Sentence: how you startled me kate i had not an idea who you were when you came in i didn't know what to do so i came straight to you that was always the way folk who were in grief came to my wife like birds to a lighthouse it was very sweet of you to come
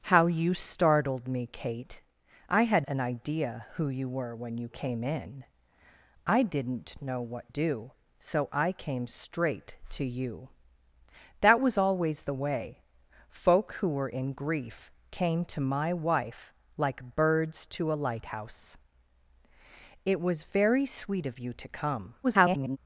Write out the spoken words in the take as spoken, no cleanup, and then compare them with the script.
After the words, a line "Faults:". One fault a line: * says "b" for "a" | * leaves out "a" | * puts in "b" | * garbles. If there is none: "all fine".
how you startled me kate i had an idea who you were when you came in i didn't know what do so i came straight to you that was always the way folk who were in grief came to my wife like birds to a lighthouse it was very sweet of you to come [garbled]
Faults:
* leaves out "not"
* leaves out "to"
* garbles